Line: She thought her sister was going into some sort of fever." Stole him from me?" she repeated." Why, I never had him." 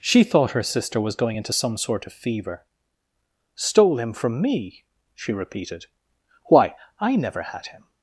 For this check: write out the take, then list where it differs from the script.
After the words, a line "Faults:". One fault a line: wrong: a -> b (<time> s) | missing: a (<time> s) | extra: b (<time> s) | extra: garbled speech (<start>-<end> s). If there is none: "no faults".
She thought her sister was going into some sort of fever." Stole him from me?" she repeated." Why, I never had him."
Faults:
no faults